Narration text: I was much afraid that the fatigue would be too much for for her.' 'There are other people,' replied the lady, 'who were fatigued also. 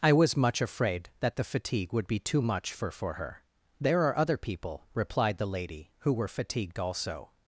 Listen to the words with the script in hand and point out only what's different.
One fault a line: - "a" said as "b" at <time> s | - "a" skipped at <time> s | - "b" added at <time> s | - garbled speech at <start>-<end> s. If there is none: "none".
none